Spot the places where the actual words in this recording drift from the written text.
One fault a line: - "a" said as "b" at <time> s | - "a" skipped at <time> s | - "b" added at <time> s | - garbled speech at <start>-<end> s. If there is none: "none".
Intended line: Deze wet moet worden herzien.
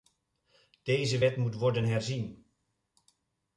none